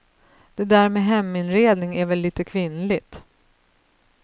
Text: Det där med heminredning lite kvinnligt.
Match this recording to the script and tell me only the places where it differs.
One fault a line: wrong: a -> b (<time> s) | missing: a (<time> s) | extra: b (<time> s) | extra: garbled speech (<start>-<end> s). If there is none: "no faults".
extra: är väl (1.9 s)